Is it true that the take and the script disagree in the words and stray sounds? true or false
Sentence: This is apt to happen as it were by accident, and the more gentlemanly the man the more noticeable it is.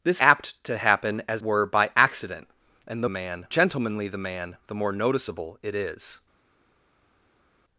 true